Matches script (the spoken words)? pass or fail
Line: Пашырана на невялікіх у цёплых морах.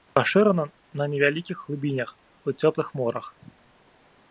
fail